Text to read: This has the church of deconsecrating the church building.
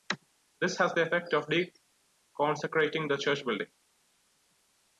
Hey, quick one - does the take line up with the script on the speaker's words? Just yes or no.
no